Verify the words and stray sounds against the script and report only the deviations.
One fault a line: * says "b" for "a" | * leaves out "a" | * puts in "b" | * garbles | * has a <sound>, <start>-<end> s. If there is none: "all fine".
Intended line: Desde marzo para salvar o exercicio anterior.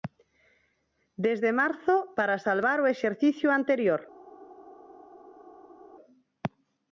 all fine